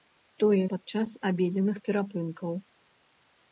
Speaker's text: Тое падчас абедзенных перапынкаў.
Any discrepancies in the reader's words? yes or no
no